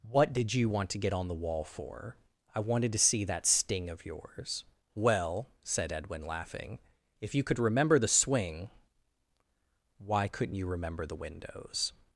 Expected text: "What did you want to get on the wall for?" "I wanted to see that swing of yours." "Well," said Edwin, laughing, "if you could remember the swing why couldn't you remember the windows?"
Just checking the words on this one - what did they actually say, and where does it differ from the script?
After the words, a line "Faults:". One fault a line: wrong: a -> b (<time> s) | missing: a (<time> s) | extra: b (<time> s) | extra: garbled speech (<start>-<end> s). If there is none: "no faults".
"What did you want to get on the wall for?" "I wanted to see that sting of yours." "Well," said Edwin, laughing, "if you could remember the swing why couldn't you remember the windows?"
Faults:
wrong: swing -> sting (3.5 s)